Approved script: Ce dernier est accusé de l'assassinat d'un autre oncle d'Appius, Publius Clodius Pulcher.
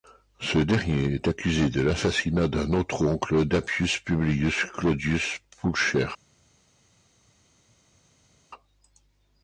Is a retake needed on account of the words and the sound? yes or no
no